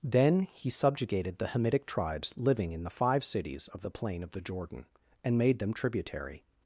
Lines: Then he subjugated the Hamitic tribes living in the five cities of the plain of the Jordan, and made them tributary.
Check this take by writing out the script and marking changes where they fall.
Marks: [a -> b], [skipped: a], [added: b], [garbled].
Then he subjugated the Hamitic tribes living in the five cities of the plain of the Jordan, and made them tributary.